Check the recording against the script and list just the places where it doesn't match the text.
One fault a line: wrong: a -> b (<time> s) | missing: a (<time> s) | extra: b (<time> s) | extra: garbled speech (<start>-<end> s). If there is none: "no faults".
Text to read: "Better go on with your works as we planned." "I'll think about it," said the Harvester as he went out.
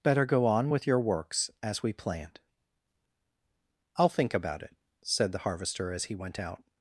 no faults